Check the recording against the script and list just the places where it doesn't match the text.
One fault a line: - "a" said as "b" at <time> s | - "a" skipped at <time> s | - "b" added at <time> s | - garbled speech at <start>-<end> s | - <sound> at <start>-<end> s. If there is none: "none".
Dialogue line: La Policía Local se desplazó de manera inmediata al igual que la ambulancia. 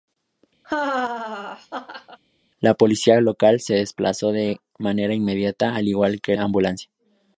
- laugh at 0.6-2.2 s
- "la" skipped at 6.3 s